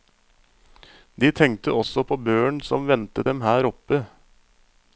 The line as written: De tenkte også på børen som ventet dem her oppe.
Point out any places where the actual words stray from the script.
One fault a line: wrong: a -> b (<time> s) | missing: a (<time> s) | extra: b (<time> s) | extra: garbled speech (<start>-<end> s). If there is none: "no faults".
no faults